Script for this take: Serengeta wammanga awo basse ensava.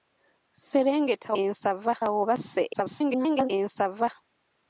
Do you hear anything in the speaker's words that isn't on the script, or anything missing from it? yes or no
yes